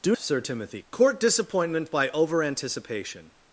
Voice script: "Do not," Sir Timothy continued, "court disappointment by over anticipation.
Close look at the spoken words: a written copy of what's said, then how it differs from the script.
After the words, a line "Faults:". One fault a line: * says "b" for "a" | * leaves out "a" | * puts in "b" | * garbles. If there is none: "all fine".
"Do," Sir Timothy "court disappointment by over anticipation.
Faults:
* leaves out "not"
* leaves out "continued"